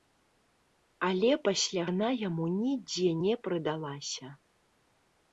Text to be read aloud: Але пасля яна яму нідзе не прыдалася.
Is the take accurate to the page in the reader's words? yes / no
yes